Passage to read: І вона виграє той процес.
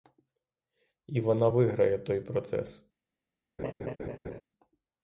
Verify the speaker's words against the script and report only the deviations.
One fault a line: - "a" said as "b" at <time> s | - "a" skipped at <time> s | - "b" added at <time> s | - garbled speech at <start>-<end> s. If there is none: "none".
none